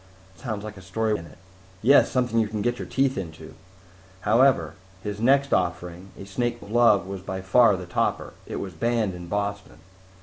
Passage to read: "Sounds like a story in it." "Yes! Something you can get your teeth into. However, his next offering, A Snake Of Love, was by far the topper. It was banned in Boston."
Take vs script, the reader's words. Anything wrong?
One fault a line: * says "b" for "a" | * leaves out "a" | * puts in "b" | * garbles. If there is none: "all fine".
all fine